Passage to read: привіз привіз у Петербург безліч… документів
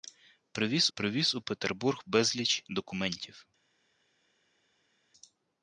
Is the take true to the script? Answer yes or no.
yes